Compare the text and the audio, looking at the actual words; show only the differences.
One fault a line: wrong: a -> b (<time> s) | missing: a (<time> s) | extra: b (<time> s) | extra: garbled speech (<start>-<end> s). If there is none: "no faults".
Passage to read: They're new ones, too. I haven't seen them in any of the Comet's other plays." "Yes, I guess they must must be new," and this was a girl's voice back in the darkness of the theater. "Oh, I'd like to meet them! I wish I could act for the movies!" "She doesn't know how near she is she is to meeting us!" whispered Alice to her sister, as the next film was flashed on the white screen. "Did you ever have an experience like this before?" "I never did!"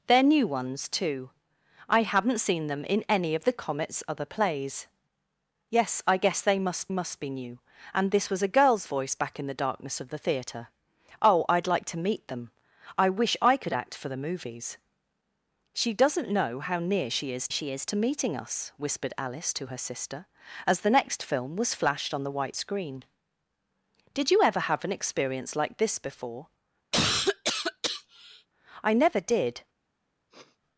no faults